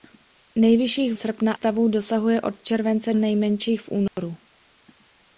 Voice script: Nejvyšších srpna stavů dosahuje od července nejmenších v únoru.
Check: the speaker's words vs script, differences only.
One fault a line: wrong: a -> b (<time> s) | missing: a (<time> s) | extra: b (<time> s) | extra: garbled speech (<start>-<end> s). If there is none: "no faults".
no faults